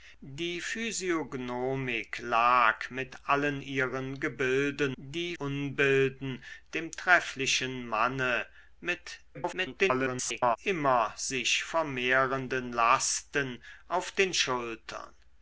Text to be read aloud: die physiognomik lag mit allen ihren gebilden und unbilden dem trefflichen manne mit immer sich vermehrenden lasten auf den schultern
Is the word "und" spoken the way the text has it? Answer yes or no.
no